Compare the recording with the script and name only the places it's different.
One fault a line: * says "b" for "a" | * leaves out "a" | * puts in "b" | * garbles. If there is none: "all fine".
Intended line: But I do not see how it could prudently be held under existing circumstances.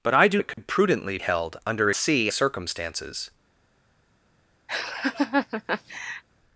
* leaves out "not see how"
* leaves out "be"
* says "see" for "existing"